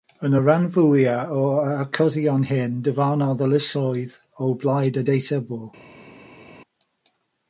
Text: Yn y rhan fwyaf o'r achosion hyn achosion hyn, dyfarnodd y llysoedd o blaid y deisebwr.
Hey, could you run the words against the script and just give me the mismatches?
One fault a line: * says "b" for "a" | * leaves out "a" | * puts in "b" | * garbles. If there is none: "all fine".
* leaves out "achosion hyn"